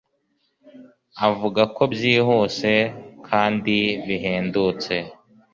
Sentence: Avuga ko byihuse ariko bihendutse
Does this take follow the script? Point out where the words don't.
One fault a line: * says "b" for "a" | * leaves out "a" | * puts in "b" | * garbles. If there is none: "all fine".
* says "kandi" for "ariko"